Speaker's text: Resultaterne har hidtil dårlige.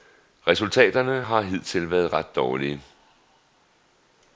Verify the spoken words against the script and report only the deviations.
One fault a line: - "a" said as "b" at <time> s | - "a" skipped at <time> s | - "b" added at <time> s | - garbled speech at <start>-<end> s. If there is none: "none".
- "været ret" added at 1.9 s